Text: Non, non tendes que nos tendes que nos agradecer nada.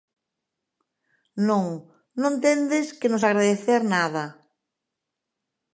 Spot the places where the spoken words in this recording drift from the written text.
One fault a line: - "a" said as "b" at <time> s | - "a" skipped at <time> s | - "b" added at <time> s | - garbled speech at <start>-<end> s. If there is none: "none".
- "tendes que nos" skipped at 3.2 s